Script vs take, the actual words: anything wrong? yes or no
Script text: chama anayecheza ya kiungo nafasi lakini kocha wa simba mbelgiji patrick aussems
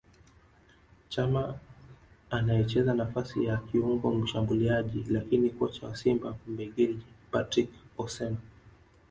yes